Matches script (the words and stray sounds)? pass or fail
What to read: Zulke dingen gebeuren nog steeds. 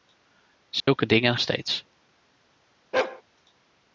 fail